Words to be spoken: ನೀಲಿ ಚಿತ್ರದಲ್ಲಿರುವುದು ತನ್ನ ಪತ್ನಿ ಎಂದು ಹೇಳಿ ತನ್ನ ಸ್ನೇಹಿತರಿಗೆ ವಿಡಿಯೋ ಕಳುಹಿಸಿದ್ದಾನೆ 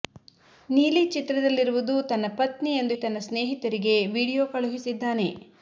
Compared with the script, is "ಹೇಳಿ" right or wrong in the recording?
wrong